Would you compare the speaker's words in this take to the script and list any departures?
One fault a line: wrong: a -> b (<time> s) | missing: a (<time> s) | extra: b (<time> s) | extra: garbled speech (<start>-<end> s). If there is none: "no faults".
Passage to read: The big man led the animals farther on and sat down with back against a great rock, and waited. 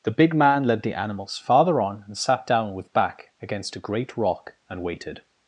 no faults